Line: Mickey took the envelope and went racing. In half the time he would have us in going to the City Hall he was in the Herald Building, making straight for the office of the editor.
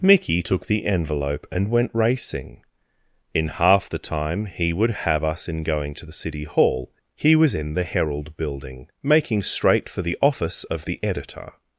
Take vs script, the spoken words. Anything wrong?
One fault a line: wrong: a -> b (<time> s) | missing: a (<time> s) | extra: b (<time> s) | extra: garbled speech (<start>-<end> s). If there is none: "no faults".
no faults